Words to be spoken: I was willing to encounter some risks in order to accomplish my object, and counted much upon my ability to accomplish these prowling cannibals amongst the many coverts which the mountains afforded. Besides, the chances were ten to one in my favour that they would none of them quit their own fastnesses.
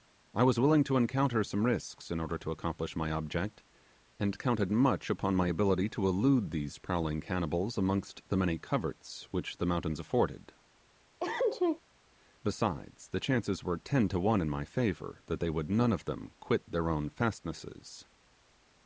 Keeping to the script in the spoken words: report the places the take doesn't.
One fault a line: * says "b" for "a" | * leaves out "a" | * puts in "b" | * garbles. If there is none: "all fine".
* says "elude" for "accomplish"